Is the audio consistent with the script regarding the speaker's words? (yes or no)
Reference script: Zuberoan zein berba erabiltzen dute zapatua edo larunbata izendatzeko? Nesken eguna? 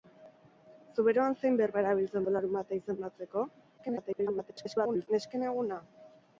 no